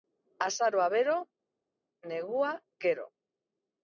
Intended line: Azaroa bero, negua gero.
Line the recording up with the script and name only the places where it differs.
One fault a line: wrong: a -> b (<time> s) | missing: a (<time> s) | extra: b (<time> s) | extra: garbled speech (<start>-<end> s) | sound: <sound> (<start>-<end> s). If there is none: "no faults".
no faults